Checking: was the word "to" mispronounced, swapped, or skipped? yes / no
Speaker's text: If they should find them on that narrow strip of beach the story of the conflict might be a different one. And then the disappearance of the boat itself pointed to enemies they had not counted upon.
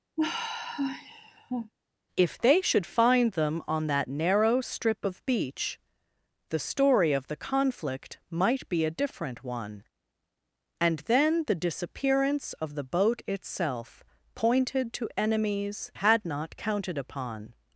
no